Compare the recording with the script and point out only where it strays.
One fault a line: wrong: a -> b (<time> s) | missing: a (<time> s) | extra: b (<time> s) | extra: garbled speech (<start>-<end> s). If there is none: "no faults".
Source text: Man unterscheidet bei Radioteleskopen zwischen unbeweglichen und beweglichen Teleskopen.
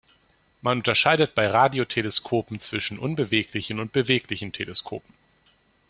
no faults